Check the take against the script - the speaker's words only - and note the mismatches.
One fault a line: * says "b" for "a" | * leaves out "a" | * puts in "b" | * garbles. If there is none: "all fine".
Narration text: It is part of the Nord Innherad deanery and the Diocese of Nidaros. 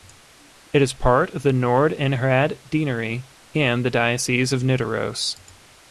all fine